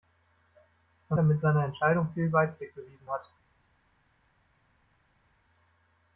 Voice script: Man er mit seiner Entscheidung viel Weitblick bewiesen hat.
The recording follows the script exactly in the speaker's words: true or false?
true